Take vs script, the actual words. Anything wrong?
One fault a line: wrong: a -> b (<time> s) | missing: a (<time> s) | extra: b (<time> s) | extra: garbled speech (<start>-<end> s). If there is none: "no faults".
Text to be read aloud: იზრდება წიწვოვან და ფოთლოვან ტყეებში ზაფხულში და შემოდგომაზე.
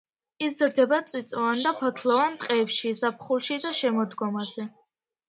no faults